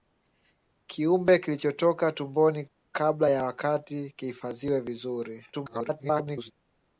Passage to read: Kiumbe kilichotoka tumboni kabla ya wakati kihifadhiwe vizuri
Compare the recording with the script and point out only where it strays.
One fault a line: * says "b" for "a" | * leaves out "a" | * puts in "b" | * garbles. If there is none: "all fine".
* garbles